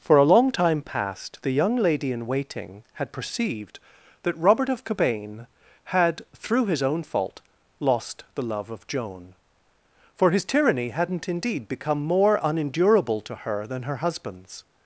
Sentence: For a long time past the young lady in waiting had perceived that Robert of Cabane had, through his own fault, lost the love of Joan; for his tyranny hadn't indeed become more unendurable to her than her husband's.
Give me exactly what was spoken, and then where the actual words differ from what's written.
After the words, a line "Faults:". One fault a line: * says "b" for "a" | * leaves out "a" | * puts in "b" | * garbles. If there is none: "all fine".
For a long time past the young lady in waiting had perceived that Robert of Cabane had, through his own fault, lost the love of Joan; for his tyranny hadn't indeed become more unendurable to her than her husband's.
Faults:
all fine